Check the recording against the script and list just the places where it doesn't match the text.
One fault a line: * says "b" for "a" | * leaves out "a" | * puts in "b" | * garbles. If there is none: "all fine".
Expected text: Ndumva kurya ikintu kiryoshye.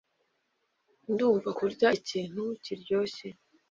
all fine